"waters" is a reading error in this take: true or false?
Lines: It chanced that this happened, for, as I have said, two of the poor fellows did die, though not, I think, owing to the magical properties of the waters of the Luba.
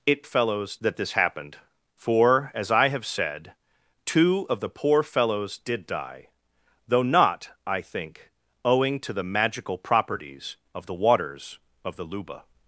false